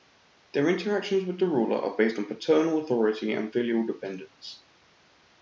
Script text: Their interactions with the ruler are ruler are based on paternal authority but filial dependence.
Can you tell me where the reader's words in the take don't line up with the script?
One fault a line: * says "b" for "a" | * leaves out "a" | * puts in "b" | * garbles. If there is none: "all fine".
* leaves out "ruler are"
* says "and" for "but"